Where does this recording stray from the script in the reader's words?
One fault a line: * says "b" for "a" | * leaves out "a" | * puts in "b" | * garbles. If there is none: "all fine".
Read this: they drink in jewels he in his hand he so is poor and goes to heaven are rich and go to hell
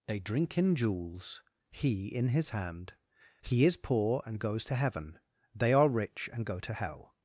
* leaves out "so"
* puts in "they"